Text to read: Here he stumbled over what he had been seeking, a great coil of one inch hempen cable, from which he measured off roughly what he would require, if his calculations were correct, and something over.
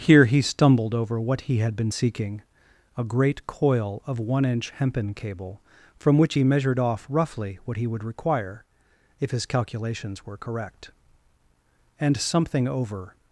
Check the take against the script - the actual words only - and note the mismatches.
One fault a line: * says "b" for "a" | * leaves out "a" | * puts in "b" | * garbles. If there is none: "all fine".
all fine